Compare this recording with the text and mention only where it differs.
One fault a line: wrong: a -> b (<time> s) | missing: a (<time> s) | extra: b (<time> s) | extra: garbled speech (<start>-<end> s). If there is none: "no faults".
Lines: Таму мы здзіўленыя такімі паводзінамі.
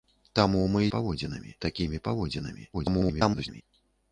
wrong: здзіўленыя -> паводзінамі (1.0 s)
extra: garbled speech (2.7-3.6 s)